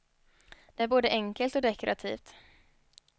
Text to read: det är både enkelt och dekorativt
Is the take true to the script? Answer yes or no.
yes